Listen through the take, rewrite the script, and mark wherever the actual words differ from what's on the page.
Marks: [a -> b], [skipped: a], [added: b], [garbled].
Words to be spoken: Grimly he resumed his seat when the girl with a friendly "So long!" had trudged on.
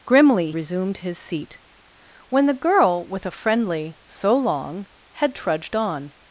Grimly [skipped: he] resumed his seat when the girl with a friendly "So long!" had trudged on.